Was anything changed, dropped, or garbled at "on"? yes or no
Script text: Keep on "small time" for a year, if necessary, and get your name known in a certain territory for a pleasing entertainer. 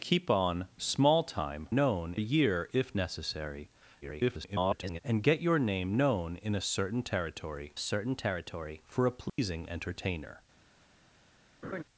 no